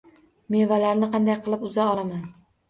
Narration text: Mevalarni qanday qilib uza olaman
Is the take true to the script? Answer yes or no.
yes